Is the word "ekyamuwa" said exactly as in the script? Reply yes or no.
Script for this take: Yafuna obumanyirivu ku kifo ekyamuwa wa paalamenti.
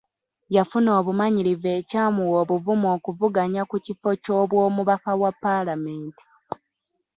no